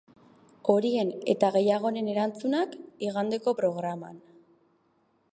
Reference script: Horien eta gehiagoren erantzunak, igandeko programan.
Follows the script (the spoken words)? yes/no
yes